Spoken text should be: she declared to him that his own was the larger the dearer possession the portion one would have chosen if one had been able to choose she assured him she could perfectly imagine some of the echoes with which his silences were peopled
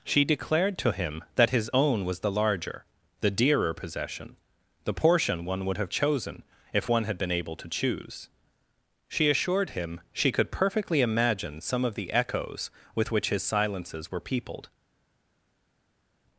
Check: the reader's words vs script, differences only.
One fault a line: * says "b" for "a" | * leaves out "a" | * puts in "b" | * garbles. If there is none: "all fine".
all fine